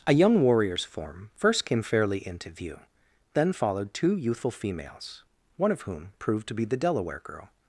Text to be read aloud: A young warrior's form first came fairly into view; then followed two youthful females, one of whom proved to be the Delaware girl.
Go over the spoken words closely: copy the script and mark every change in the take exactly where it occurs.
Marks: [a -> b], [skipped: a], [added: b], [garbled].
A young warrior's form first came fairly into view; then followed two youthful females, one of whom proved to be the Delaware girl.